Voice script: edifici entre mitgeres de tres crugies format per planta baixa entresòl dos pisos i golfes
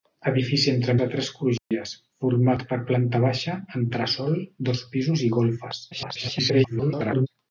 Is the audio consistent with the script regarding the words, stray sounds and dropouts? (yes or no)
no